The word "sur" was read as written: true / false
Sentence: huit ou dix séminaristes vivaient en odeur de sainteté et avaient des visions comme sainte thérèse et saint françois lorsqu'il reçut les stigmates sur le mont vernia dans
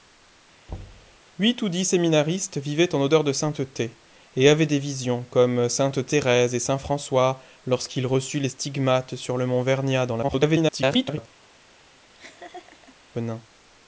true